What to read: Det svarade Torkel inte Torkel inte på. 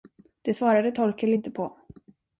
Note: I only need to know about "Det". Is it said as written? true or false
true